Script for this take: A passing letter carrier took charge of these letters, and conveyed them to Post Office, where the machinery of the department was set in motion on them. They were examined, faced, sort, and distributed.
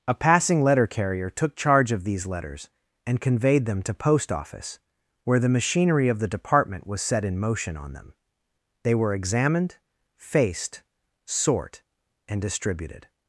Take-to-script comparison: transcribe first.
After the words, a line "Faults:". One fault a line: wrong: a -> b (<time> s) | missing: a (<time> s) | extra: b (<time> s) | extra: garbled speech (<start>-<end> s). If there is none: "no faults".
A passing letter carrier took charge of these letters, and conveyed them to Post Office, where the machinery of the department was set in motion on them. They were examined, faced, sort, and distributed.
Faults:
no faults